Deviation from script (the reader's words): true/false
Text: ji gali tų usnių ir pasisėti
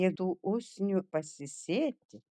true